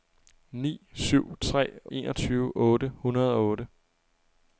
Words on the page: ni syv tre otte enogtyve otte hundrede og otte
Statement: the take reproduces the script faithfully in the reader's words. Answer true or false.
false